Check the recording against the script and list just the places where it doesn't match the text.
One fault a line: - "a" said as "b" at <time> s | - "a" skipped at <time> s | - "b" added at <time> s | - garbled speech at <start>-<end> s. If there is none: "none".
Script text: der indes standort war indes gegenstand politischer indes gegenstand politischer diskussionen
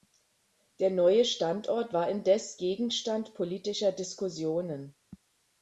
- "indes" said as "neue" at 0.9 s
- "indes gegenstand politischer" skipped at 3.9 s